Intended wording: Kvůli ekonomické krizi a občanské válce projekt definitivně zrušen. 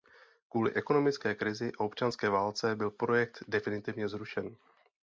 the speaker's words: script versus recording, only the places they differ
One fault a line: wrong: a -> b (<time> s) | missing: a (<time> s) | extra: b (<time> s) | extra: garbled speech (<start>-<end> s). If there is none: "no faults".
extra: byl (2.8 s)